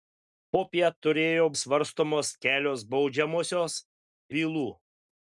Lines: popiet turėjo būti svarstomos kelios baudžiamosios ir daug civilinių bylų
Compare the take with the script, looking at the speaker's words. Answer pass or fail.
fail